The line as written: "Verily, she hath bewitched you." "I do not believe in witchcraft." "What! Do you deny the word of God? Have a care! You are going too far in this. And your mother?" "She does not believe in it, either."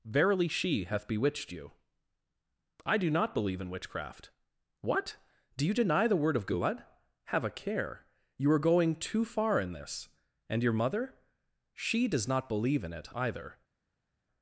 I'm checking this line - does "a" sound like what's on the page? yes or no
yes